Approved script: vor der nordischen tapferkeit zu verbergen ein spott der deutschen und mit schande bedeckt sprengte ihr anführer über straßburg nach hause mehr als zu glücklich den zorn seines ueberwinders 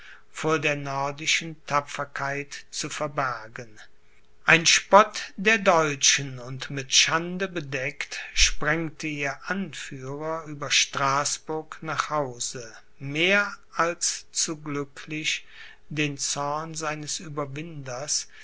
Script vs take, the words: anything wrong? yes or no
no